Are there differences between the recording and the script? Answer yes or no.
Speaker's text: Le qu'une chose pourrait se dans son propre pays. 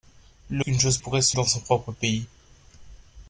no